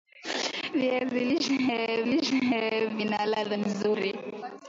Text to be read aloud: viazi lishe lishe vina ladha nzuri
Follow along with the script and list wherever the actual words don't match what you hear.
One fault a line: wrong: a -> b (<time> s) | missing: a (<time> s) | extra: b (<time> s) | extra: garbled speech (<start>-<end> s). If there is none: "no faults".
no faults